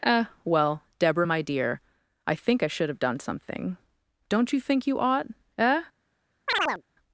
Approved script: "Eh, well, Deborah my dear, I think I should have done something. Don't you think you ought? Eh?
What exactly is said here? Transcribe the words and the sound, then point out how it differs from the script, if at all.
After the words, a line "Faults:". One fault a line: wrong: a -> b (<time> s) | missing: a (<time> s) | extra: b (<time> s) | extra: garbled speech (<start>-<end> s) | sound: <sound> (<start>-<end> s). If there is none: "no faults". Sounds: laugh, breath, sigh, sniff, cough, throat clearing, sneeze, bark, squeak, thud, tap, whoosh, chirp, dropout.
"Eh, well, Deborah my dear, I think I should have done something. Don't you think you ought? Eh?
Faults:
sound: chirp (6.5-6.8 s)